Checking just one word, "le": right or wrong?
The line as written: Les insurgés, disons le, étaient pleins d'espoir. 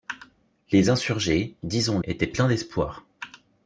wrong